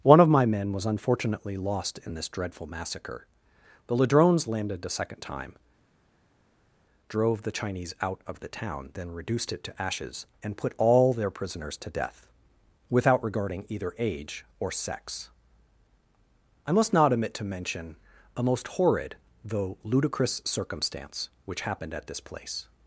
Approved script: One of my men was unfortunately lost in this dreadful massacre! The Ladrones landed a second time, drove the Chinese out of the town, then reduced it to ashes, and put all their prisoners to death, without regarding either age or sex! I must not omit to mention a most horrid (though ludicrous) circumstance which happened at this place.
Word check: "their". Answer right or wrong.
right